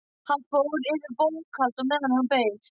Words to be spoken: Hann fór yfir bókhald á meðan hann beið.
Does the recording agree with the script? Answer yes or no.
yes